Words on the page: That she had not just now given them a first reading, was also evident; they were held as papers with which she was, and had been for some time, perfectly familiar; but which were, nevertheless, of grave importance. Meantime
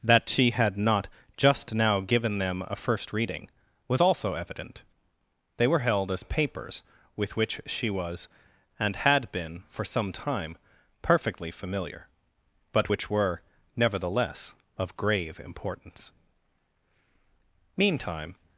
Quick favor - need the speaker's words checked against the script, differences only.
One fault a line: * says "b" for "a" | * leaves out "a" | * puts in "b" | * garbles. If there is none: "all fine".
all fine